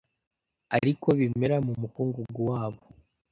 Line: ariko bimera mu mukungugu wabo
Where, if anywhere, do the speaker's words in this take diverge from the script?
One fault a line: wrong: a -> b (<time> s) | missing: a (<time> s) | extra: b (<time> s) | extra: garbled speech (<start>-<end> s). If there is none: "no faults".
no faults